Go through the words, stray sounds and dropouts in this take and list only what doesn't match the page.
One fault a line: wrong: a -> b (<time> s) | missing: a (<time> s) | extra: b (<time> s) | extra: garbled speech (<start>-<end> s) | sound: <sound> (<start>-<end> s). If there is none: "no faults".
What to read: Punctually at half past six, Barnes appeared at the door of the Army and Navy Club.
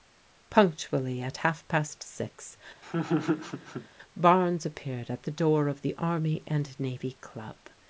sound: laugh (2.8-3.9 s)